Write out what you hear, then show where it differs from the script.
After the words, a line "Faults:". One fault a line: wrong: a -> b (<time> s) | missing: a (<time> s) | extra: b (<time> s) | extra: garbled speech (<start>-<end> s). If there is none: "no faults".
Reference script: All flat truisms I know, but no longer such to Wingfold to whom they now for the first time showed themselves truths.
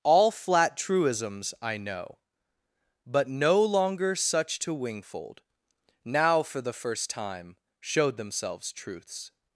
All flat truisms I know, but no longer such to Wingfold now for the first time showed themselves truths.
Faults:
missing: to whom they (5.4 s)